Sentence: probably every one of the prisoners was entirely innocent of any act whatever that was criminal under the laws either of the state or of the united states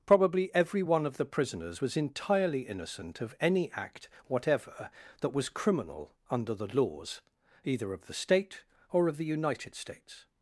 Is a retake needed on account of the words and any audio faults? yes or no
no